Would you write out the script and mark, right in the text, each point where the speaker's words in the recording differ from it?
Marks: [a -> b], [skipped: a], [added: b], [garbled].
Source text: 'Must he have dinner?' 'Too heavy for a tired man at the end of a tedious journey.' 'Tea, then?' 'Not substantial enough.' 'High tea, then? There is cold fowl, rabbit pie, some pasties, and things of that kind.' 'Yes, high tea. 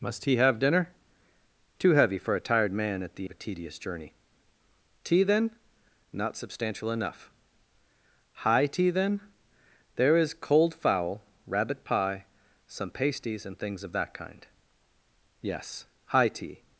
'Must he have dinner?' 'Too heavy for a tired man at the [skipped: end] of a tedious journey.' 'Tea, then?' 'Not substantial enough.' 'High tea, then? There is cold fowl, rabbit pie, some pasties, and things of that kind.' 'Yes, high tea.